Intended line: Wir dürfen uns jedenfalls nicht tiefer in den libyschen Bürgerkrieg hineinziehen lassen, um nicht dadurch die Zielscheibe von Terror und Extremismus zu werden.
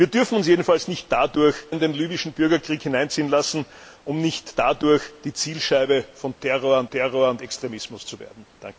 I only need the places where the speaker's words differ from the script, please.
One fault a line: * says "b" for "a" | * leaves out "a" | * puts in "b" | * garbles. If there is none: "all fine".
* says "dadurch" for "tiefer"
* puts in "Terror und"